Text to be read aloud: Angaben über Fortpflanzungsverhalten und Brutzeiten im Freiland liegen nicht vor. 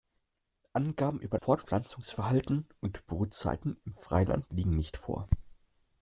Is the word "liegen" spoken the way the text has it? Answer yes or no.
yes